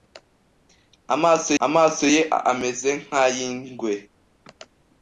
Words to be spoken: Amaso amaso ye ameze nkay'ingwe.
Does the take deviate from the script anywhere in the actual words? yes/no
no